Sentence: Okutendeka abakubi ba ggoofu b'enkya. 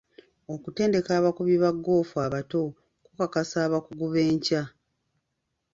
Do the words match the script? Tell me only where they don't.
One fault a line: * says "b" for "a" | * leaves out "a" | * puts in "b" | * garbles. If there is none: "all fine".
* puts in "abato kukakasa abakugu"